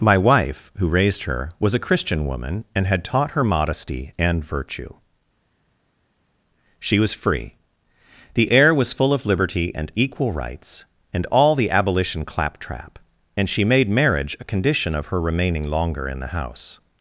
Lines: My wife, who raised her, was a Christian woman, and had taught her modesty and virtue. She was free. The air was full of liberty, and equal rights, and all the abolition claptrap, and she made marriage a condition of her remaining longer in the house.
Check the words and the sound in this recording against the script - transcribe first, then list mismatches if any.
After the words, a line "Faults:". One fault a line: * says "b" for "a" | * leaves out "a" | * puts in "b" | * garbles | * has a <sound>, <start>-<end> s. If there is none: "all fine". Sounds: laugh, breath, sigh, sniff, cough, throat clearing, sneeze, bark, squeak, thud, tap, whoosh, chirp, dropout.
My wife, who raised her, was a Christian woman, and had taught her modesty and virtue. She was free. The air was full of liberty, and equal rights, and all the abolition claptrap, and she made marriage a condition of her remaining longer in the house.
Faults:
all fine